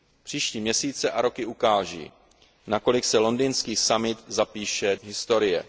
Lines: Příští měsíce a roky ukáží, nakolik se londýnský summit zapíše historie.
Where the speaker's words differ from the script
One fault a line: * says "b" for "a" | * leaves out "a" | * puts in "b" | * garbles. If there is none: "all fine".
all fine